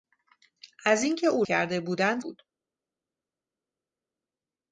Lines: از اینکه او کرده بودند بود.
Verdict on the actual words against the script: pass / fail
pass